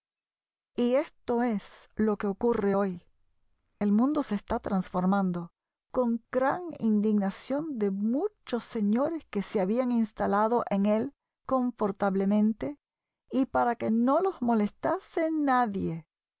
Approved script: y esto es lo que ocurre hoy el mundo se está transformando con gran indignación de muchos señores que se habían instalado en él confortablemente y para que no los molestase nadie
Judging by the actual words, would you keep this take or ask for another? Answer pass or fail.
pass